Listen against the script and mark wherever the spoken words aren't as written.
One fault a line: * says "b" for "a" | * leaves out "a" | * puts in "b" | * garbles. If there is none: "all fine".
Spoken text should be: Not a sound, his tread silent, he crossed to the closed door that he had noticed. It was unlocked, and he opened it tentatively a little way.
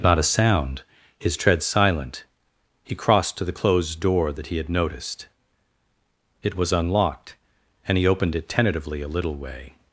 all fine